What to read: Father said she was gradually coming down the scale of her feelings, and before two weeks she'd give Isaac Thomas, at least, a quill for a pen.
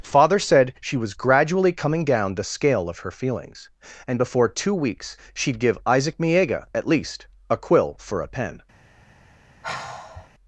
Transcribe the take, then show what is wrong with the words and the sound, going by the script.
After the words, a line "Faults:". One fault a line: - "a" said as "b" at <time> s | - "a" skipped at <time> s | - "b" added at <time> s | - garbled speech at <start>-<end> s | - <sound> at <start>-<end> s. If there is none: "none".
Father said she was gradually coming down the scale of her feelings, and before two weeks she'd give Isaac Miega, at least, a quill for a pen.
Faults:
- "Thomas" said as "Miega" at 6.2 s
- sigh at 9.6-10.3 s